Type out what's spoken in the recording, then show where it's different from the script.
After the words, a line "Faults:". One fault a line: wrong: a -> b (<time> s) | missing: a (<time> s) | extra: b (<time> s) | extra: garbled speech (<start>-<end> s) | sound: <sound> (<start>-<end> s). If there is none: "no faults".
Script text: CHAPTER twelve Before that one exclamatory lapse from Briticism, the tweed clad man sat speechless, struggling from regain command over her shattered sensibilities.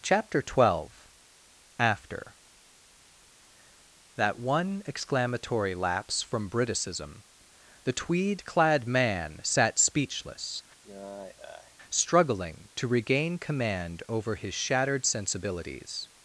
CHAPTER twelve AFTER that one exclamatory lapse from Briticism, the tweed clad man sat speechless, struggling to regain command over his shattered sensibilities.
Faults:
wrong: Before -> AFTER (1.8 s)
sound: sigh (10.8-11.8 s)
wrong: from -> to (12.7 s)
wrong: her -> his (14.3 s)